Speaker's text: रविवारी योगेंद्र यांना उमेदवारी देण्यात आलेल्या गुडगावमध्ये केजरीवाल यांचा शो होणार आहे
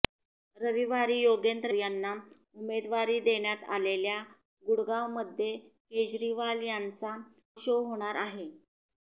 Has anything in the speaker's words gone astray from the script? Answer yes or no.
no